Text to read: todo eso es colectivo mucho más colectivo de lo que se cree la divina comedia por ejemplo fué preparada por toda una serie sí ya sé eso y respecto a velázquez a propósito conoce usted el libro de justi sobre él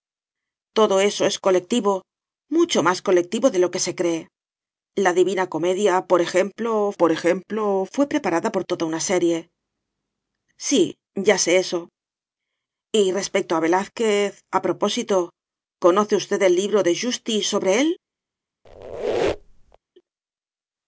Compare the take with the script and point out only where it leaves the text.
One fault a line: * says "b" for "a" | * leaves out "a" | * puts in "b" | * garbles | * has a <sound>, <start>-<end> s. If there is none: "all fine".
* puts in "por ejemplo"
* has a squeak, 18.6-19.8 s